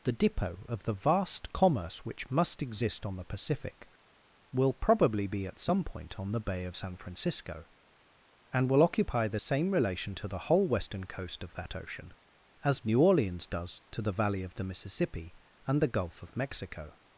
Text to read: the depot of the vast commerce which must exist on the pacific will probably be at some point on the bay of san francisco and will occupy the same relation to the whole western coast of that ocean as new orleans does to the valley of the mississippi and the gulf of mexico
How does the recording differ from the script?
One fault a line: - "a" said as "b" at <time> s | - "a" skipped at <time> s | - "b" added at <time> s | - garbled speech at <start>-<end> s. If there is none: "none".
none